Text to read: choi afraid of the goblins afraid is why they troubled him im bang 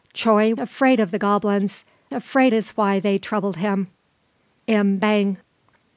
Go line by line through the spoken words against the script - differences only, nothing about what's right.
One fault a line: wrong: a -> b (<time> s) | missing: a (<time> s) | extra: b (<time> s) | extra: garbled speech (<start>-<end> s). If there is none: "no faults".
no faults